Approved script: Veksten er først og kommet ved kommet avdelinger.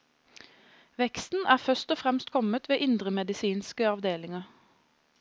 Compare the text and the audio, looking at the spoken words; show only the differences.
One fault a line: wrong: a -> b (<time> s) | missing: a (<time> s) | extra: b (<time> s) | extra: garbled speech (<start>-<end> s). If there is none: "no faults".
extra: fremst (2.0 s)
wrong: kommet -> indremedisinske (2.8 s)